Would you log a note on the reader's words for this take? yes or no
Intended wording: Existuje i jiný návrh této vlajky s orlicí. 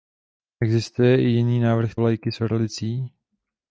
yes